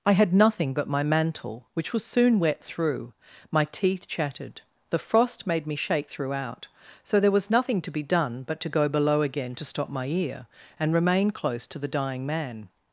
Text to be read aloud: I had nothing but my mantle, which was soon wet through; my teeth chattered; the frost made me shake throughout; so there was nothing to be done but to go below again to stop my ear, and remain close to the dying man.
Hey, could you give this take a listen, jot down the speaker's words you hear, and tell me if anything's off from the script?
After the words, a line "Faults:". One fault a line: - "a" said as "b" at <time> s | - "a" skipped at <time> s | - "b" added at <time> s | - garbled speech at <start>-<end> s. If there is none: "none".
I had nothing but my mantle, which was soon wet through; my teeth chattered; the frost made me shake throughout; so there was nothing to be done but to go below again to stop my ear, and remain close to the dying man.
Faults:
none